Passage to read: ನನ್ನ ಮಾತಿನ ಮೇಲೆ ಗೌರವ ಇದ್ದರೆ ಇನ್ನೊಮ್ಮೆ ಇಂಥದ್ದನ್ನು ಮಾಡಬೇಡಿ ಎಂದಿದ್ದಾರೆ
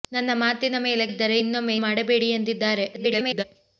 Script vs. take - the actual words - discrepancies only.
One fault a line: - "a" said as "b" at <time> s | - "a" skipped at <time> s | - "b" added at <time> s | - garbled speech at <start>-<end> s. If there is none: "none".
- "ಗೌರವ" skipped at 1.1 s
- "ಇಂಥದ್ದನ್ನು" skipped at 1.7 s
- garbled speech at 2.9-3.4 s